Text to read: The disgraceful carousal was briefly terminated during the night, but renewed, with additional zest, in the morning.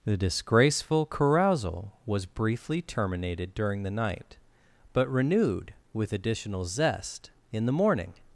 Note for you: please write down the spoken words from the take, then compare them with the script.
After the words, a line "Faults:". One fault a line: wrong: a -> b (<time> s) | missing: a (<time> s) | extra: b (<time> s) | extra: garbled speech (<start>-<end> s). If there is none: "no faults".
The disgraceful carousal was briefly terminated during the night, but renewed, with additional zest, in the morning.
Faults:
no faults